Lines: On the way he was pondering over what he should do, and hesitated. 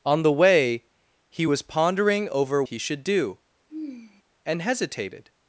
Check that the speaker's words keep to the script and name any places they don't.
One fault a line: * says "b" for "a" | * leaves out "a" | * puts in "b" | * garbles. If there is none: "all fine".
* leaves out "what"